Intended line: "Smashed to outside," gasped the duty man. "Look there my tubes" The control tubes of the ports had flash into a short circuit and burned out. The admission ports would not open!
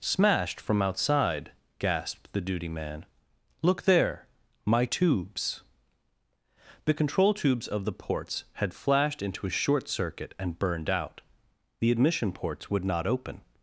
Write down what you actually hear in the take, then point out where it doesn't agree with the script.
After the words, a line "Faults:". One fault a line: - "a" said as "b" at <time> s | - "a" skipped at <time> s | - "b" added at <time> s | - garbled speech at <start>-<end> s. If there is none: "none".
"Smashed from outside," gasped the duty man. "Look there my tubes" The control tubes of the ports had flashed into a short circuit and burned out. The admission ports would not open!
Faults:
- "to" said as "from" at 0.6 s
- "flash" said as "flashed" at 8.7 s